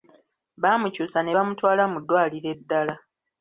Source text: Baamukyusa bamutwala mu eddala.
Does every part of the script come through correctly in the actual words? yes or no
no